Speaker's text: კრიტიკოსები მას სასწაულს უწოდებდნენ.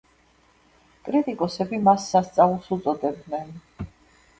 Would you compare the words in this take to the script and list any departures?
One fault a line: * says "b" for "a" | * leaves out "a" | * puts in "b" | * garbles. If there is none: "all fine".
all fine